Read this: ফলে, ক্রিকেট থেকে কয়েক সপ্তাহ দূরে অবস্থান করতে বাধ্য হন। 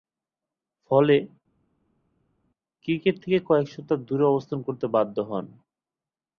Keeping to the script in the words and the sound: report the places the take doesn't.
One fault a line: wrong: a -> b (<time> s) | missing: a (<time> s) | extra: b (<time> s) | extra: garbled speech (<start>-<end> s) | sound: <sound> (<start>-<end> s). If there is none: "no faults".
no faults